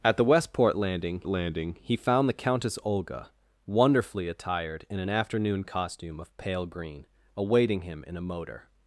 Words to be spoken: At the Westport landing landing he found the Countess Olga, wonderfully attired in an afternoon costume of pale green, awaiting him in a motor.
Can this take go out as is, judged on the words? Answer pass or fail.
pass